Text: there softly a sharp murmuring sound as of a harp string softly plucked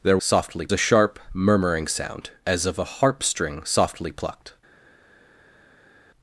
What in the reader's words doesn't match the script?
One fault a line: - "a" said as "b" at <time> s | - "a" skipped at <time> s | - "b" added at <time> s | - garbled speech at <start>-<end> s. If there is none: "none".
none